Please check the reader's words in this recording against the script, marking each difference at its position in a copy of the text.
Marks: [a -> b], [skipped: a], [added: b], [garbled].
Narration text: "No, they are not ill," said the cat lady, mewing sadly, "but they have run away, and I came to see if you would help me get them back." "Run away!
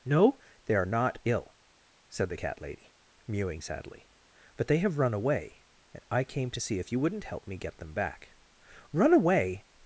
"No, they are not ill," said the cat lady, mewing sadly, "but they have run away, and I came to see if you [would -> wouldn't] help me get them back." "Run away!